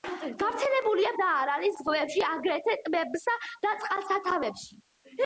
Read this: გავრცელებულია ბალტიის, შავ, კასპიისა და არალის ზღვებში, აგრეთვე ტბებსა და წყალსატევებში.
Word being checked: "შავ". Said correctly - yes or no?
no